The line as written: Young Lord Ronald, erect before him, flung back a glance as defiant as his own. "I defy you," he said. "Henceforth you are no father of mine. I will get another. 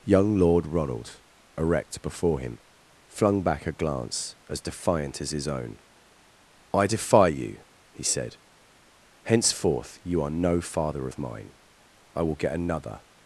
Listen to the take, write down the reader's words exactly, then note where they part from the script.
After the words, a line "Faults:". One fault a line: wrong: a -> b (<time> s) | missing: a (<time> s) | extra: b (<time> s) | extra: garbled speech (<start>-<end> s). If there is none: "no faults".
Young Lord Ronald, erect before him, flung back a glance as defiant as his own. "I defy you," he said. "Henceforth you are no father of mine. I will get another.
Faults:
no faults